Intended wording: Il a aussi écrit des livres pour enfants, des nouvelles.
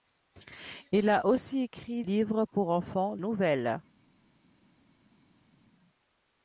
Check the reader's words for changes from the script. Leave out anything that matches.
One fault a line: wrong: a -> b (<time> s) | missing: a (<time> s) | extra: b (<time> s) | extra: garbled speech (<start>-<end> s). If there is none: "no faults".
missing: des (2.0 s)
missing: des (3.2 s)